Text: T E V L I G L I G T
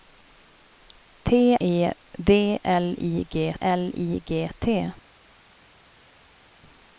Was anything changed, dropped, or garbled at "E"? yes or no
no